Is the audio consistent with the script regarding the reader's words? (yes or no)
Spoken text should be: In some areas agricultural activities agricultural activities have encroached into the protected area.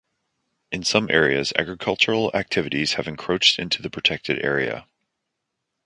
no